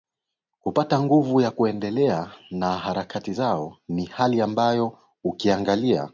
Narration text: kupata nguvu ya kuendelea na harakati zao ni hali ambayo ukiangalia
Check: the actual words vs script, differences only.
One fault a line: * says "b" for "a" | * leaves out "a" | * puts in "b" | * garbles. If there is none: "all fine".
all fine